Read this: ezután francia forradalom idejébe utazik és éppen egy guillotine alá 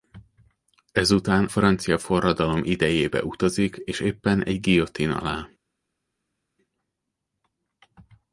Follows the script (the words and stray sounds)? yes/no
yes